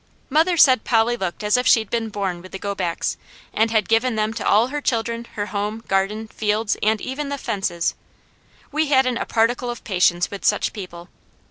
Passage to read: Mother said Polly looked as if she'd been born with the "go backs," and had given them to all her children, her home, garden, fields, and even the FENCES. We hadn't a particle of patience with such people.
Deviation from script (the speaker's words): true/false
false